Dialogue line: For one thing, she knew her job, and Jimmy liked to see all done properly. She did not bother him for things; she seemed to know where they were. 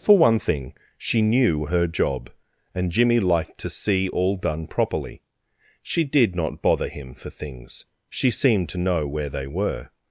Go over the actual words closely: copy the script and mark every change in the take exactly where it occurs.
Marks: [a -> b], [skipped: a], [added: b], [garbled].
For one thing, she knew her job, and Jimmy liked to see all done properly. She did not bother him for things; she seemed to know where they were.